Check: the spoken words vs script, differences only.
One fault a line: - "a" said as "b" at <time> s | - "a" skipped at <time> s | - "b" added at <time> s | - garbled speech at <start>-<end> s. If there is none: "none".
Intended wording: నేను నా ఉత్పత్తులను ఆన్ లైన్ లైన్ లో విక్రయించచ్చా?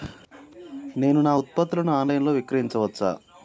- "లైన్" skipped at 2.2 s